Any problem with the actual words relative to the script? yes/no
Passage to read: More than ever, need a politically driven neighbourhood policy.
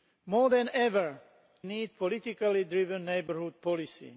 no